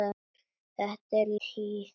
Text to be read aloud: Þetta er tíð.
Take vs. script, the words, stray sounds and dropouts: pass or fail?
pass